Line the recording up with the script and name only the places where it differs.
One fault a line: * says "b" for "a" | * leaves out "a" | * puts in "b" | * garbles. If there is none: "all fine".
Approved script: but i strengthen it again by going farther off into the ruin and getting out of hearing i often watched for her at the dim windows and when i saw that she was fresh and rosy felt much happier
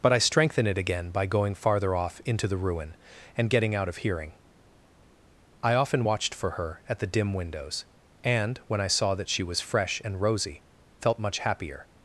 all fine